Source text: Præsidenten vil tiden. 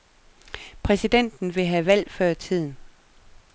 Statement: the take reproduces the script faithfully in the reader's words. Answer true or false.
false